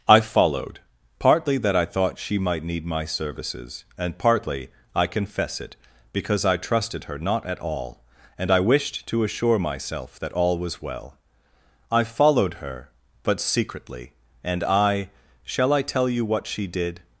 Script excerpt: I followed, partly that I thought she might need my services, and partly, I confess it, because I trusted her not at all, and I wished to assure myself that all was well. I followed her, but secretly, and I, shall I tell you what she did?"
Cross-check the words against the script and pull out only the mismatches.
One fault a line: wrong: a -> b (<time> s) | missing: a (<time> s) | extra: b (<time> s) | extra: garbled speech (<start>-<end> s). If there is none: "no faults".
no faults